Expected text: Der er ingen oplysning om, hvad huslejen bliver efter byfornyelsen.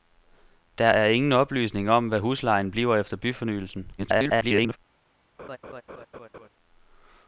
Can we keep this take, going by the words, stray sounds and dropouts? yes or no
no